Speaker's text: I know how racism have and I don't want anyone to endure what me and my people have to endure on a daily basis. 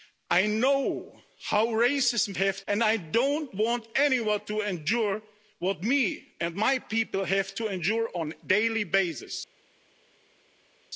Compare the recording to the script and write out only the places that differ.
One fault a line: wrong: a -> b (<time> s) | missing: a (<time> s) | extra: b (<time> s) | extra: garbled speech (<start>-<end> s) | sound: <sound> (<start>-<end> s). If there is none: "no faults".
no faults